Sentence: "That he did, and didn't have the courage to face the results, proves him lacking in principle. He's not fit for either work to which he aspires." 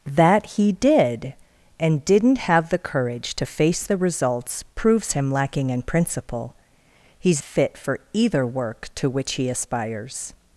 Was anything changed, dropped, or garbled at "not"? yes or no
yes